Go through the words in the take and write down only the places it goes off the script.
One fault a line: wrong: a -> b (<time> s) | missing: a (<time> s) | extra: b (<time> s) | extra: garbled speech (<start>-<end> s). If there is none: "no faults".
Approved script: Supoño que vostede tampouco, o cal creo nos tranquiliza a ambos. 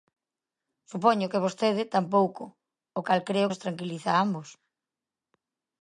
no faults